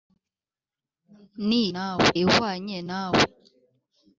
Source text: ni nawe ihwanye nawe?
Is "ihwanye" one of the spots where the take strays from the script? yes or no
no